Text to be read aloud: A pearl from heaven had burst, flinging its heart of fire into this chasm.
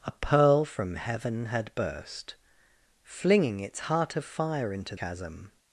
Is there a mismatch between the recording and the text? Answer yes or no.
yes